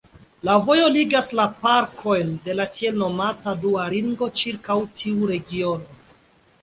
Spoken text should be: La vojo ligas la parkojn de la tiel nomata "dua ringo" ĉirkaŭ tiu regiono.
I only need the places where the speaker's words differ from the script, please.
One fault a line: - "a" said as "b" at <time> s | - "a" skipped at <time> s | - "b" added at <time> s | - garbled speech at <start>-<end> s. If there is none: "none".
none